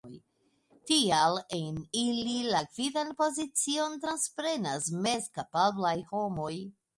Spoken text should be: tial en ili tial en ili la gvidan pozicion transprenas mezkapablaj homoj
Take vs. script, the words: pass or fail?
fail